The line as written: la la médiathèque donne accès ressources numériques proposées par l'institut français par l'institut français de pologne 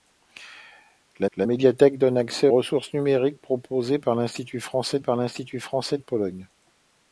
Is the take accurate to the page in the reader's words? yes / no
yes